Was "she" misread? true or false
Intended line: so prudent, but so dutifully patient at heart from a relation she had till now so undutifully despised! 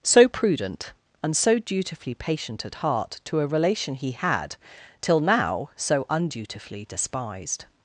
true